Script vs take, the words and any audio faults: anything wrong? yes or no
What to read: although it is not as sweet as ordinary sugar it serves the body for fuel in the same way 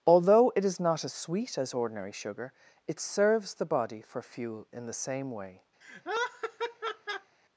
yes